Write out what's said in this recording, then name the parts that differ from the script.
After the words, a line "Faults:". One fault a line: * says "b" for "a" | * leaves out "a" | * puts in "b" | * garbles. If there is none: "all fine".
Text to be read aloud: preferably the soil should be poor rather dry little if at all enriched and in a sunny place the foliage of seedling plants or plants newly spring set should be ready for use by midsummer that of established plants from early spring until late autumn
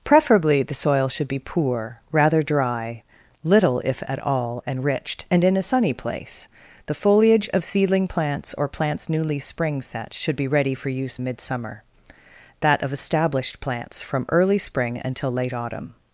preferably the soil should be poor rather dry little if at all enriched and in a sunny place the foliage of seedling plants or plants newly spring set should be ready for use midsummer that of established plants from early spring until late autumn
Faults:
* leaves out "by"